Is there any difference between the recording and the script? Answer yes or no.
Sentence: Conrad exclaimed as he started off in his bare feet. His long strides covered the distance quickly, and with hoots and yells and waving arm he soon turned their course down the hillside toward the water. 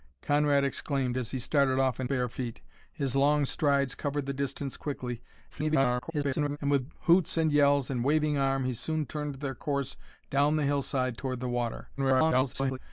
yes